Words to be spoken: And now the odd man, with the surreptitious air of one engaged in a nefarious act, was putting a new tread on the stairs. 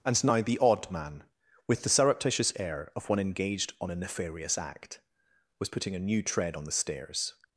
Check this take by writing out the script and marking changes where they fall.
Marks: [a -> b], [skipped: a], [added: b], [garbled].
And now the odd man, with the surreptitious air of one engaged [in -> on] a nefarious act, was putting a new tread on the stairs.